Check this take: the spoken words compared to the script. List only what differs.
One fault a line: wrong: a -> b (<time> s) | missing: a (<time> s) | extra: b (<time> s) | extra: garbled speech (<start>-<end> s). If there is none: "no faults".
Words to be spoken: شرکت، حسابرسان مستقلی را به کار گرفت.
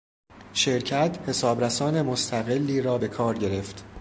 no faults